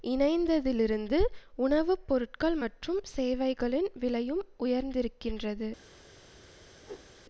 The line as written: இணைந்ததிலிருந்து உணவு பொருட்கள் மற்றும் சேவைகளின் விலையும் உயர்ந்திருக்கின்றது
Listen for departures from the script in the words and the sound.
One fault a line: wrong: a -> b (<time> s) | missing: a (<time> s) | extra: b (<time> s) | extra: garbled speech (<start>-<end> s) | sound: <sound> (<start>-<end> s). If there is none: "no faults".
sound: whoosh (6.8-7.1 s)